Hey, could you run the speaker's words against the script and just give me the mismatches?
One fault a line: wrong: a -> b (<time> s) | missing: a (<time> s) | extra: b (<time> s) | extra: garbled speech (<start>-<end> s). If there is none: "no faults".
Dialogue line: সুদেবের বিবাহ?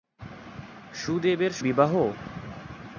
no faults